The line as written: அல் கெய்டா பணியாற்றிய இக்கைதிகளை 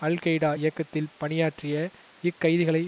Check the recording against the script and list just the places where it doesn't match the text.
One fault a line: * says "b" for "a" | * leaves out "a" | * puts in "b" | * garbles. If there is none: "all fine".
* puts in "இயக்கத்தில்"